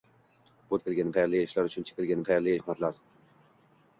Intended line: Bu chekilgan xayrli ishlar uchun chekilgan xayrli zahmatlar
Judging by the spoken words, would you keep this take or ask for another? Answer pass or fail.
pass